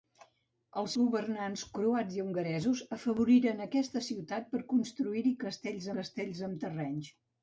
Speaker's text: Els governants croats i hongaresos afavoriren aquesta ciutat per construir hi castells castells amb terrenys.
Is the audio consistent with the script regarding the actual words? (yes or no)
yes